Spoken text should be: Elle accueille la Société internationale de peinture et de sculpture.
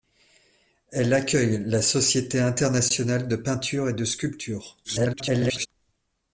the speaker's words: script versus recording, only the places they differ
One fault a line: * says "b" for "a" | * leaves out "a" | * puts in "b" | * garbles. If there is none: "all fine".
* garbles